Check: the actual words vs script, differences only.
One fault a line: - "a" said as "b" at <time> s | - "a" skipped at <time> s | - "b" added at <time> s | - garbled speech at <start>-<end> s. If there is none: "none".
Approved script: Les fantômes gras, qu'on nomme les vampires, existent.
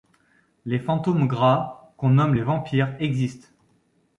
none